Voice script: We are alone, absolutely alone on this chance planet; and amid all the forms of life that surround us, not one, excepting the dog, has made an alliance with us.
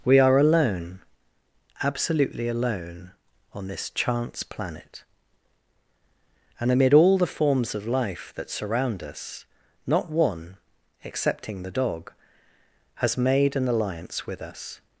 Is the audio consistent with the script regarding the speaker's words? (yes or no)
yes